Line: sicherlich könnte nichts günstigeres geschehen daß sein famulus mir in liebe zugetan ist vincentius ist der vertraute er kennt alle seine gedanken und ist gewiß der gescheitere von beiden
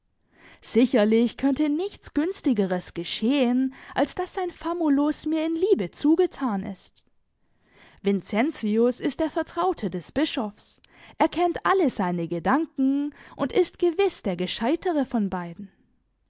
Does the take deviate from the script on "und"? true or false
false